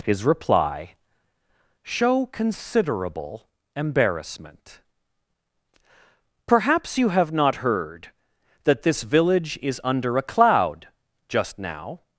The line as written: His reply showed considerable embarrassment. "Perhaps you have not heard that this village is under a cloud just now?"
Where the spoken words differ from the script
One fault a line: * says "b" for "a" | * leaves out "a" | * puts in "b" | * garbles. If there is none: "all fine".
* says "show" for "showed"